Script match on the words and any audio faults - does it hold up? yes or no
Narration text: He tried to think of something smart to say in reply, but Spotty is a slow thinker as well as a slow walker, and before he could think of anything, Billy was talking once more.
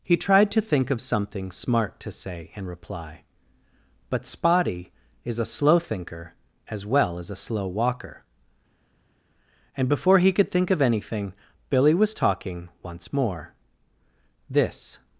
no